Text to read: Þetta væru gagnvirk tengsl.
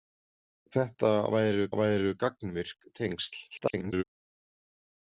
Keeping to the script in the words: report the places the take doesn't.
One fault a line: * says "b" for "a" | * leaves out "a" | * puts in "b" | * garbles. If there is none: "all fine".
* puts in "væru"
* garbles